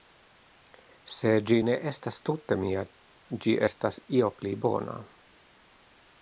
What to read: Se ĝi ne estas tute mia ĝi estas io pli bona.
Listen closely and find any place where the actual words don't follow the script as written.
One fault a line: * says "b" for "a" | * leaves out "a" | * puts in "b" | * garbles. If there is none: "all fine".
all fine